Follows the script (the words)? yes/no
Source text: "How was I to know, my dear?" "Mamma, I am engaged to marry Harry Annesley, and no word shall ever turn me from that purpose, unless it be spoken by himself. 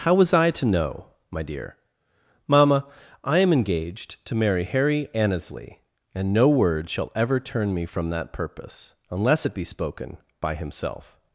yes